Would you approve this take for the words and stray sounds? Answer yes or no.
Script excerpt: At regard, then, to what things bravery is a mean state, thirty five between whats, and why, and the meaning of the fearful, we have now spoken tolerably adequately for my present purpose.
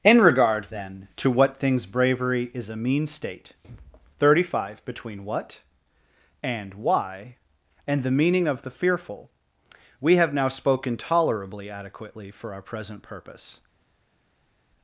no